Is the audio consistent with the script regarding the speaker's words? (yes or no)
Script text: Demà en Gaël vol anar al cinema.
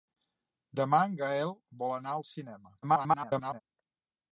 no